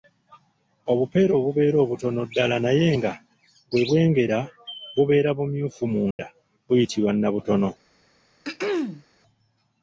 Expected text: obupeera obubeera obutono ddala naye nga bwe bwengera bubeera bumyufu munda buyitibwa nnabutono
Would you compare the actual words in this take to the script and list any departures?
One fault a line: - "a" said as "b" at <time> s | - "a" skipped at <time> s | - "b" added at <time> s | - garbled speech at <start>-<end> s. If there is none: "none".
none